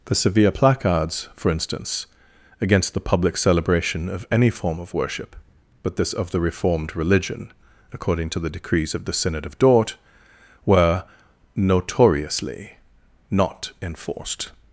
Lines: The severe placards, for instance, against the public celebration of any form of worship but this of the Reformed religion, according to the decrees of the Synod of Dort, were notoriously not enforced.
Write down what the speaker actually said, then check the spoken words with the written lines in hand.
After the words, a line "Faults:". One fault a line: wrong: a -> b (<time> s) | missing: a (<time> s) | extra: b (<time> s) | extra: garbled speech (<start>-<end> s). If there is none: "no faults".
The severe placards, for instance, against the public celebration of any form of worship but this of the Reformed religion, according to the decrees of the Synod of Dort, were notoriously not enforced.
Faults:
no faults